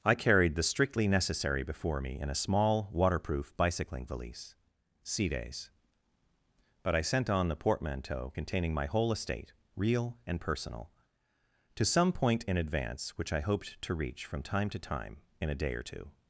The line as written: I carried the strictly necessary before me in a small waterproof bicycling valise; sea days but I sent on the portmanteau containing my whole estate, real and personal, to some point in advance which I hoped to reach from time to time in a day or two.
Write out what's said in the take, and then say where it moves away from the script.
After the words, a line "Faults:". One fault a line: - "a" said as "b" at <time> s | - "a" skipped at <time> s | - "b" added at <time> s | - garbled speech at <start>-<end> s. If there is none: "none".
I carried the strictly necessary before me in a small waterproof bicycling valise; sea days but I sent on the portmanteau containing my whole estate, real and personal, to some point in advance which I hoped to reach from time to time in a day or two.
Faults:
none